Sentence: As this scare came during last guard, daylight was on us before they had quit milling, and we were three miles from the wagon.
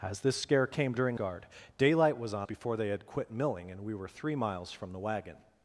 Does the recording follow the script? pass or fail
fail